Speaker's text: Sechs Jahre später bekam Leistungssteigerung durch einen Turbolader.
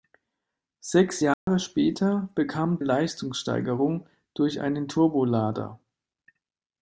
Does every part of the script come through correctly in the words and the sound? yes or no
no